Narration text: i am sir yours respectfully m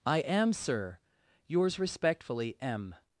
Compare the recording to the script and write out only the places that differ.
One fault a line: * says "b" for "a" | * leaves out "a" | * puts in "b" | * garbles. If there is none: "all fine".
all fine